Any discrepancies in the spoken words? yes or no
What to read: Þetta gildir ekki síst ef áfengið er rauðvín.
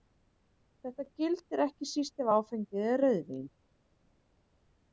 no